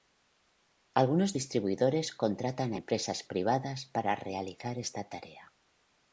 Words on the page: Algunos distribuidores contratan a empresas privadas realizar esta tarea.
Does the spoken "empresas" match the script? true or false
true